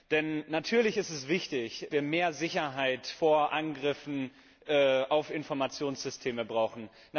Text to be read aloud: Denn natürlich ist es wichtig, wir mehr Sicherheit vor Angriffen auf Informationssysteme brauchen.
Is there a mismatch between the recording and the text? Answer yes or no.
no